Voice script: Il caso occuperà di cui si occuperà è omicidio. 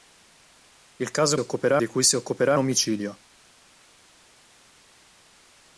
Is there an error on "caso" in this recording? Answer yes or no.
no